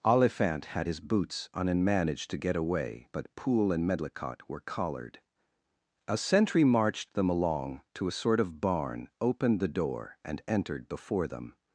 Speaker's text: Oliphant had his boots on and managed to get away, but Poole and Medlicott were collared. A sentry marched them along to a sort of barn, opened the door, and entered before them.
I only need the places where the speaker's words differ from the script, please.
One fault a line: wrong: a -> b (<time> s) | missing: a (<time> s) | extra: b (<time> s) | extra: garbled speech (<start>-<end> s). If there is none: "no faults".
no faults